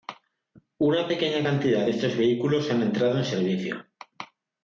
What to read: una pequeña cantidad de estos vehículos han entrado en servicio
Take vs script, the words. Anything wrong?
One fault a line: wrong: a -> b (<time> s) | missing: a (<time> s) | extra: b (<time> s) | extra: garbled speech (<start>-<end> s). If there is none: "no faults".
no faults